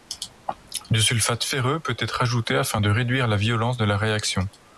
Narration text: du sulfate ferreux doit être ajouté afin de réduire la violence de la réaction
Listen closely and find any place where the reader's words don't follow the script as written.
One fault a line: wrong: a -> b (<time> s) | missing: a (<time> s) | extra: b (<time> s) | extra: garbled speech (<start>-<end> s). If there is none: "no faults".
wrong: doit -> peut (1.8 s)